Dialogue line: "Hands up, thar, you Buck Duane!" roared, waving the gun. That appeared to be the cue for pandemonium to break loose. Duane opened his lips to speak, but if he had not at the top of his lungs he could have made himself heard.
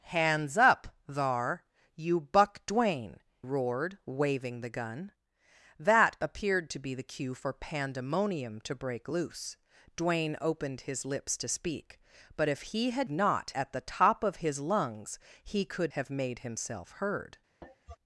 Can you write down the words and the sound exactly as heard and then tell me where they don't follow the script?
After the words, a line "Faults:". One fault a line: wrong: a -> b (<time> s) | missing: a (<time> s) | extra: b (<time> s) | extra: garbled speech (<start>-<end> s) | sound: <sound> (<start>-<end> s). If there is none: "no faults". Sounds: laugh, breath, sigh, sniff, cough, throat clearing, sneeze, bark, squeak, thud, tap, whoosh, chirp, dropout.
"Hands up, thar, you Buck Duane!" roared, waving the gun. That appeared to be the cue for pandemonium to break loose. Duane opened his lips to speak, but if he had not at the top of his lungs he could have made himself heard.
Faults:
sound: cough (17.6-18.0 s)